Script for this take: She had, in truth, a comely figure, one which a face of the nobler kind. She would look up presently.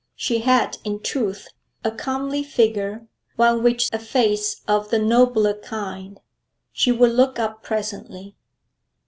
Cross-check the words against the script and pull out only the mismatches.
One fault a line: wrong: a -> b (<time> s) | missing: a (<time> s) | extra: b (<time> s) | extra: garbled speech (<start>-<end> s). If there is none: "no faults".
no faults